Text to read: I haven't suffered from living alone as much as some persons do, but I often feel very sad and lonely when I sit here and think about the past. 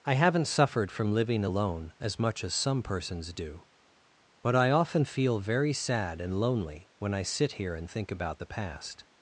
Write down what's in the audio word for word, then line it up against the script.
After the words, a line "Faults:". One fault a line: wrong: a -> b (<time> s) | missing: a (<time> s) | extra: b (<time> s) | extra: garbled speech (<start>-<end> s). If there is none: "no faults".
I haven't suffered from living alone as much as some persons do, but I often feel very sad and lonely when I sit here and think about the past.
Faults:
no faults